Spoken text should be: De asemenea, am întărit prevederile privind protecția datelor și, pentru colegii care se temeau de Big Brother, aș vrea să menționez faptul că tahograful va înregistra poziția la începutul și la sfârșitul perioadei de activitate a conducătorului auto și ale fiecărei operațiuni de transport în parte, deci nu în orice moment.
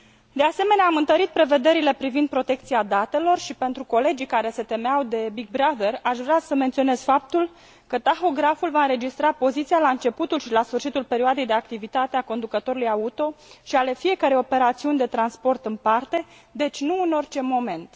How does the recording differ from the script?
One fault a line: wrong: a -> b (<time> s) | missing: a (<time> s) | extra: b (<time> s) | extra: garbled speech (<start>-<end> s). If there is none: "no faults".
no faults